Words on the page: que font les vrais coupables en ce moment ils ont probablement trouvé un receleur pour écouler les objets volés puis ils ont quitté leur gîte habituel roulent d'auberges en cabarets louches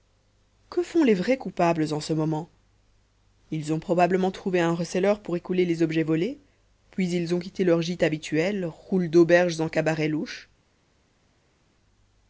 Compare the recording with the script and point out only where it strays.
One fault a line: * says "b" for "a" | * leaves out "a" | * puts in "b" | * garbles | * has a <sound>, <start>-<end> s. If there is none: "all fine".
all fine